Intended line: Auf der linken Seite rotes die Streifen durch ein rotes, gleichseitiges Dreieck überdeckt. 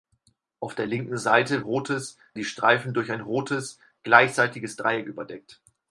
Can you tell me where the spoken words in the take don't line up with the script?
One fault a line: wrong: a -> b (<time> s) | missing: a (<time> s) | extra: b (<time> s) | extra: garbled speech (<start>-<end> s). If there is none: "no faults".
no faults